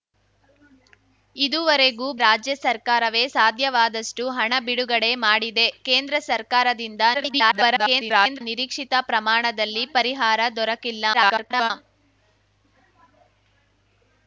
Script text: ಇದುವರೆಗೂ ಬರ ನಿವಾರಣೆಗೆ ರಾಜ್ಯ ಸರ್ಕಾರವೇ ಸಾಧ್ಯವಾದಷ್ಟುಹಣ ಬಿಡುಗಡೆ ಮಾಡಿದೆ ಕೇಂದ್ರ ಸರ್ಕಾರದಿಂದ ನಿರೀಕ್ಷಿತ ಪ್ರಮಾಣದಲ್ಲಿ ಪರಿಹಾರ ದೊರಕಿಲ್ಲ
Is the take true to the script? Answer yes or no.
no